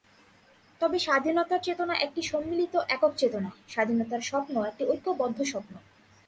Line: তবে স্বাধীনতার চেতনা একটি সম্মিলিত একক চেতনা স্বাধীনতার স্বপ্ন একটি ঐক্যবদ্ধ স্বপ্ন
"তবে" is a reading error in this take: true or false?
false